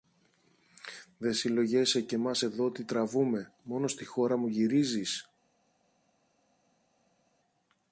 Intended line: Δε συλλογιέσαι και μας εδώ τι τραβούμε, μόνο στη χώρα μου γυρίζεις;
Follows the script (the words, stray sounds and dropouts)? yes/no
yes